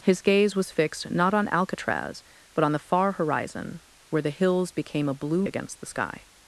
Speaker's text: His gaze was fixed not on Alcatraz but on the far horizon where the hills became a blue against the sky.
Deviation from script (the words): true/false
false